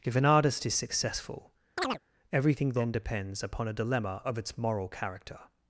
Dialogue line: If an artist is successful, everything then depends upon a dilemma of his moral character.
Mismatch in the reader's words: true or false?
true